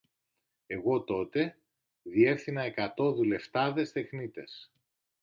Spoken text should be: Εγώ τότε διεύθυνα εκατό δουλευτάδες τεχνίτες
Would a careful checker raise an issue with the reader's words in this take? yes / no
no